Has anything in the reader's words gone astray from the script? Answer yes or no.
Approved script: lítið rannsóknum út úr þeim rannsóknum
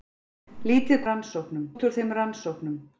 no